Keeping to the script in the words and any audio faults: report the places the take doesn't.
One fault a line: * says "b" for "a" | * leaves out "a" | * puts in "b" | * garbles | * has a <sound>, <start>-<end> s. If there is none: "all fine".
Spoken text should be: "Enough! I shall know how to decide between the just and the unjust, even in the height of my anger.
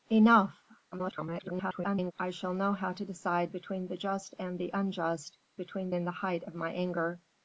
* garbles
* says "between" for "even"